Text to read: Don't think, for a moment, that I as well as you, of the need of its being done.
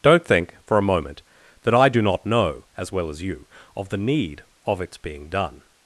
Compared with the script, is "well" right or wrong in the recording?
right